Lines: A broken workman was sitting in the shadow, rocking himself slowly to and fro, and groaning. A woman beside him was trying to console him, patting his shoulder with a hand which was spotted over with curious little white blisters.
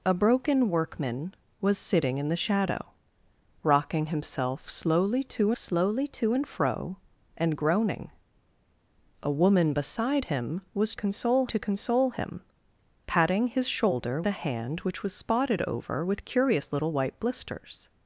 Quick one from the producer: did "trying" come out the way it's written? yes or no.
no